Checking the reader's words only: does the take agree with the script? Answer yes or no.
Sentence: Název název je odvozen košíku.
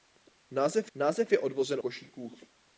yes